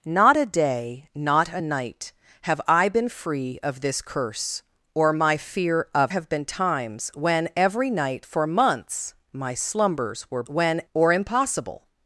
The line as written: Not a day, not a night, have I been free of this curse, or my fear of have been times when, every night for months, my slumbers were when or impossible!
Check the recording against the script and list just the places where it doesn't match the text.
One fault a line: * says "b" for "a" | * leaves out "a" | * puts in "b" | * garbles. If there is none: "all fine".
all fine